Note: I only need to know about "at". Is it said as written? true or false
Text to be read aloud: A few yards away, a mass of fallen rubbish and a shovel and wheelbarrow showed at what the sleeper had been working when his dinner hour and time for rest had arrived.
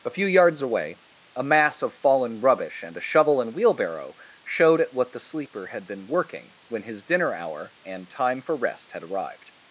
true